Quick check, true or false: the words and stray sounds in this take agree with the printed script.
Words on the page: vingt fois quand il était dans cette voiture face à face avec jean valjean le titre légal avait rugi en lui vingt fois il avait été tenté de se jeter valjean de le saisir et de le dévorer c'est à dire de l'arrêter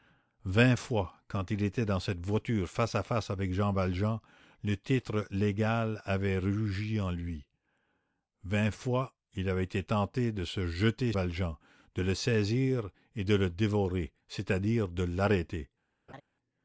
false